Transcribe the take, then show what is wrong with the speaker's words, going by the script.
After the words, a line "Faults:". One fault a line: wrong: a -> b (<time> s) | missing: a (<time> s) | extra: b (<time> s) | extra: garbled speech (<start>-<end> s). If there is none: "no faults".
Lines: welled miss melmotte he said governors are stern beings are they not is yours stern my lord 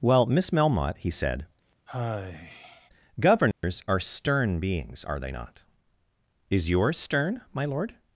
well miss melmotte he said governors are stern beings are they not is yours stern my lord
Faults:
wrong: welled -> well (0.0 s)